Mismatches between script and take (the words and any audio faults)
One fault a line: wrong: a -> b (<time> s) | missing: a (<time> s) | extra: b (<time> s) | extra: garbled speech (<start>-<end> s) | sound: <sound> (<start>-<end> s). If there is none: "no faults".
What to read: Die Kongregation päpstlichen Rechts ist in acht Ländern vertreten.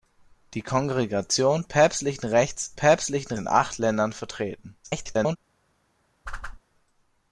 wrong: ist -> päpstlichen (2.7 s)
extra: garbled speech (4.8-5.4 s)
sound: whoosh (6.3-6.6 s)